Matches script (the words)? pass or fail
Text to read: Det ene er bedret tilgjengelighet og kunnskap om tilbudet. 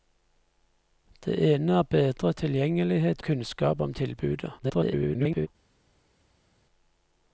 fail